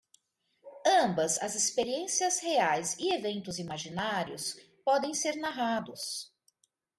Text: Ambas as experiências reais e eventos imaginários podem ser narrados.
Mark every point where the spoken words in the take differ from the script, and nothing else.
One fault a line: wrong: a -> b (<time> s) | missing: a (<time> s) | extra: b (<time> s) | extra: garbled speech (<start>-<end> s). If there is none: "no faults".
no faults